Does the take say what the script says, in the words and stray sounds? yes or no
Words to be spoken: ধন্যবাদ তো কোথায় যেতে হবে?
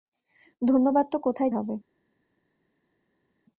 no